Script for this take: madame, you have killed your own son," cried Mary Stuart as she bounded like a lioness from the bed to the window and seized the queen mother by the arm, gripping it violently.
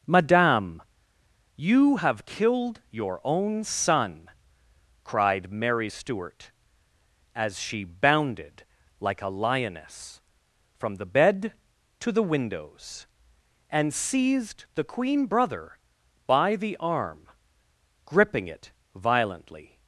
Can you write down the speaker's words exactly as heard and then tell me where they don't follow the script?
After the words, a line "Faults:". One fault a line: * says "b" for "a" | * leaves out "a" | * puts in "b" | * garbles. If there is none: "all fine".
madame, you have killed your own son," cried Mary Stuart as she bounded like a lioness from the bed to the windows and seized the queen brother by the arm, gripping it violently.
Faults:
* says "windows" for "window"
* says "brother" for "mother"